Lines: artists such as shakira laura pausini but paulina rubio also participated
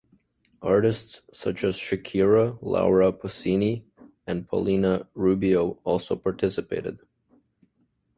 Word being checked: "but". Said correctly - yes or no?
no